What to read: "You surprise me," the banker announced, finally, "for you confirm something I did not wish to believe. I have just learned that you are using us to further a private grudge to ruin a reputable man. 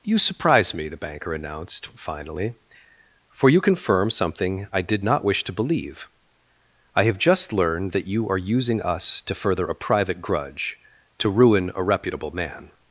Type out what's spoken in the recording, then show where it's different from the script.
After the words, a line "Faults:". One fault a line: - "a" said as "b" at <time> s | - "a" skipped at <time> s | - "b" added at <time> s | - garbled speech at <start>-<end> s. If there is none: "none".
"You surprise me," the banker announced, finally, "for you confirm something I did not wish to believe. I have just learned that you are using us to further a private grudge to ruin a reputable man.
Faults:
none